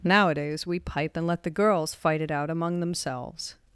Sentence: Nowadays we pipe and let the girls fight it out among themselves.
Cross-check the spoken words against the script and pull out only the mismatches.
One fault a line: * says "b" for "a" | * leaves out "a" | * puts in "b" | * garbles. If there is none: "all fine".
all fine